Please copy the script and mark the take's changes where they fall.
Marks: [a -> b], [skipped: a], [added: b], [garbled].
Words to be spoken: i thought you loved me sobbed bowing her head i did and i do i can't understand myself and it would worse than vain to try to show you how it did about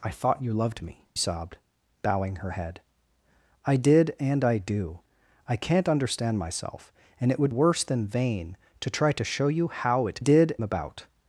i thought you loved me sobbed bowing her head i did and i do i can't understand myself and it would worse than vain to try to show you how it did about